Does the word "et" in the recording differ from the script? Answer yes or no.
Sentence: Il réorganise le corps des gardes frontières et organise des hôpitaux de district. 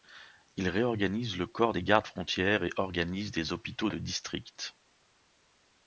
no